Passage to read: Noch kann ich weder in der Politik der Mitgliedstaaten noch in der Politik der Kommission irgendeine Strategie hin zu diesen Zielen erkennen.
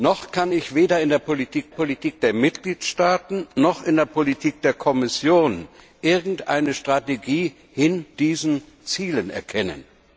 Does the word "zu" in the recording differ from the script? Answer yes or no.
yes